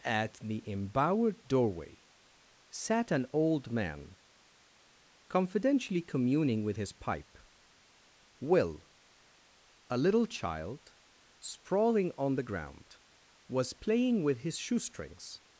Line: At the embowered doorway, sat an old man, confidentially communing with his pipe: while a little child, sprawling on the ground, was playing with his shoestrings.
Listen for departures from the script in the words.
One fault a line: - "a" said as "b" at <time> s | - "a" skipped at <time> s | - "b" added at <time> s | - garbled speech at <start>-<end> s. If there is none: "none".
- "while" said as "will" at 8.4 s